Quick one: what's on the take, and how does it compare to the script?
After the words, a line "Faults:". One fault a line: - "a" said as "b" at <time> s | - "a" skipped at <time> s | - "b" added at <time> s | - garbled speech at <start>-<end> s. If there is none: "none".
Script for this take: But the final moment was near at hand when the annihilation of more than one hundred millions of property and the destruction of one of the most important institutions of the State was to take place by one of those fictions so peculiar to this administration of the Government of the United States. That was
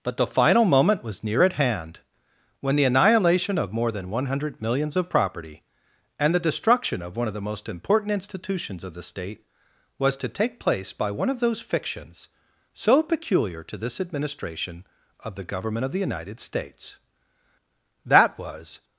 But the final moment was near at hand when the annihilation of more than one hundred millions of property and the destruction of one of the most important institutions of the State was to take place by one of those fictions so peculiar to this administration of the Government of the United States. That was
Faults:
none